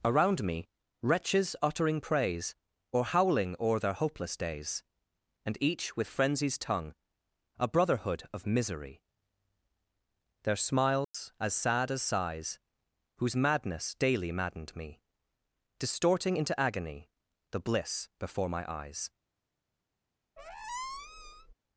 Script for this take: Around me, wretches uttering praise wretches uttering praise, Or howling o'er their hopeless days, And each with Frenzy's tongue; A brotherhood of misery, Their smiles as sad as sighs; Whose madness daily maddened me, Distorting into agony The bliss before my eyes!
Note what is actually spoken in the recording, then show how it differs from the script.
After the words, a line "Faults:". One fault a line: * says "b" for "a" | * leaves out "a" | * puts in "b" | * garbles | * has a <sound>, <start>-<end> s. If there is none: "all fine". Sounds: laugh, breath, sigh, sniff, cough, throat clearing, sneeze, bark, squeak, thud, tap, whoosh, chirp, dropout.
Around me, wretches uttering praise, Or howling o'er their hopeless days, And each with Frenzy's tongue; A brotherhood of misery, Their smiles as sad as sighs; Whose madness daily maddened me, Distorting into agony The bliss before my eyes!
Faults:
* leaves out "wretches uttering praise"
* has a dropout, 11.0-11.1 s
* has a squeak, 20.4-21.5 s